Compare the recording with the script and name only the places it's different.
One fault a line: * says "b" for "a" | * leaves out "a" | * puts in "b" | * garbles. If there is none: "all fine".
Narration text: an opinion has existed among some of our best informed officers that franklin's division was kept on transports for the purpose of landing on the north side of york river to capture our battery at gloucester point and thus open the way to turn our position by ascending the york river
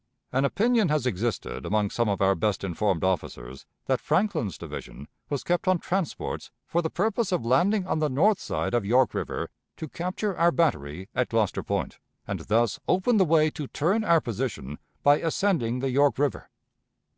all fine